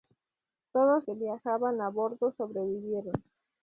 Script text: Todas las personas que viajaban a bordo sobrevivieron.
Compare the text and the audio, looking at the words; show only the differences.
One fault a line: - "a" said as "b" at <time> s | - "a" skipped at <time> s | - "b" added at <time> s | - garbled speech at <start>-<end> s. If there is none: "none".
- "las personas" skipped at 1.1 s